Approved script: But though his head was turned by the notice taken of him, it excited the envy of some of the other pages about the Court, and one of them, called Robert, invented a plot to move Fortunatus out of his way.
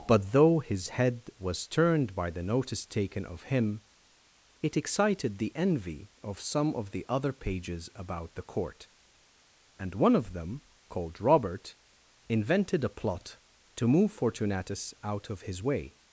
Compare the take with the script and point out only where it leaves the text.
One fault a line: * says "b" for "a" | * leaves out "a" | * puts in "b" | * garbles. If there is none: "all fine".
all fine